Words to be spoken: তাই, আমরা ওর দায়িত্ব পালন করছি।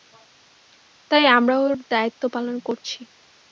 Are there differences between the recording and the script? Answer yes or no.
no